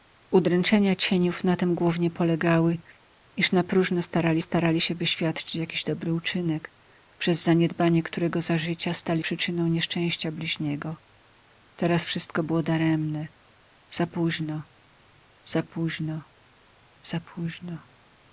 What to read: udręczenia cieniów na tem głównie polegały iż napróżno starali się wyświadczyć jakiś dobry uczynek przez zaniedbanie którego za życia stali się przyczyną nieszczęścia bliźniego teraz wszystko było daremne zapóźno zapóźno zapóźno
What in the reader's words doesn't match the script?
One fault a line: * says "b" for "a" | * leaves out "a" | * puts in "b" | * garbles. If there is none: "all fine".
* puts in "starali"
* leaves out "się"